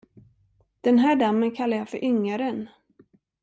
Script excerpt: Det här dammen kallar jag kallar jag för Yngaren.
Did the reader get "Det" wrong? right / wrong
wrong